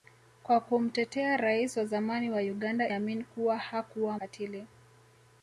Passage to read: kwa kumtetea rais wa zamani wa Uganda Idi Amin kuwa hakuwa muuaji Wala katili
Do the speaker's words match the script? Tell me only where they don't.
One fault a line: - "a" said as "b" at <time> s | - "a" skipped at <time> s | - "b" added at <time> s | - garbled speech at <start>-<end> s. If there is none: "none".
- "Idi" skipped at 2.9 s
- "muuaji Wala" skipped at 4.2 s